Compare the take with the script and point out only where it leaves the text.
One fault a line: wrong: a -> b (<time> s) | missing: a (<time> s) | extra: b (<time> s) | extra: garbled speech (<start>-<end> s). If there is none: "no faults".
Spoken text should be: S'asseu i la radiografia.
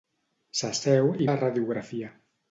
no faults